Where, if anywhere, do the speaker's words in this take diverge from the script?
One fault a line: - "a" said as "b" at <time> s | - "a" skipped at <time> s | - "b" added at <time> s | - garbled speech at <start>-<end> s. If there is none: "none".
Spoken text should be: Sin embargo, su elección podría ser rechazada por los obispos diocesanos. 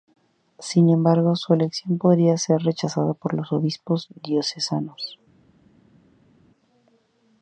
none